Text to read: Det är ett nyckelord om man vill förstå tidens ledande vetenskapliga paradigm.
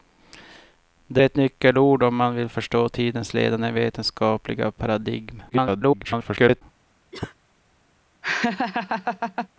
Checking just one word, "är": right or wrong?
wrong